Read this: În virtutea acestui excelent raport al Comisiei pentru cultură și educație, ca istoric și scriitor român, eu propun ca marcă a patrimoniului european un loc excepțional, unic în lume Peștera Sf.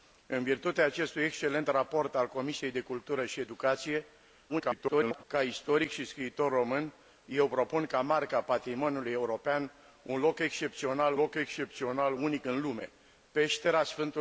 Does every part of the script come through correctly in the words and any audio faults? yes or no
no